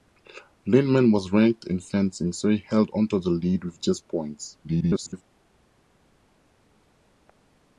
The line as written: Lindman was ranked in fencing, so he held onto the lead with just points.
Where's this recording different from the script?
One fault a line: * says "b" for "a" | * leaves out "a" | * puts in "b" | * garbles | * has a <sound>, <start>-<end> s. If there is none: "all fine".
* garbles